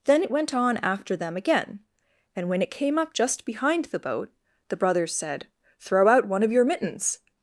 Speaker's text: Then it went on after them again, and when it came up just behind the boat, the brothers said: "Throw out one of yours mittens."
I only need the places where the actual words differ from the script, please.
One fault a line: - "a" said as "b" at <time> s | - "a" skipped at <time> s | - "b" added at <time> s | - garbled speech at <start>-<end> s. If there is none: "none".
- "yours" said as "your" at 6.5 s